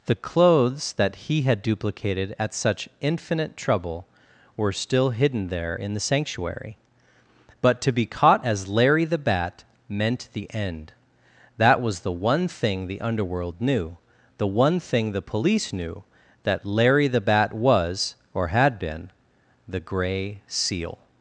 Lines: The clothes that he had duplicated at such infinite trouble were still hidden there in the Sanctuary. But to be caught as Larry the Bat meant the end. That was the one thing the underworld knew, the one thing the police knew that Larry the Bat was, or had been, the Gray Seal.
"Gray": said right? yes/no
yes